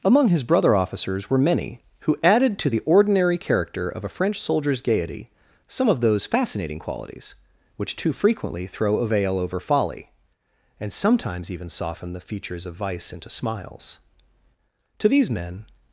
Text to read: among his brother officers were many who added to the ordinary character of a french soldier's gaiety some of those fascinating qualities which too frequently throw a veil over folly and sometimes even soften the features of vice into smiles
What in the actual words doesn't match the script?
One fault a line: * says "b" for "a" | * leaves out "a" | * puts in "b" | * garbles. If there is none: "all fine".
* puts in "to these men"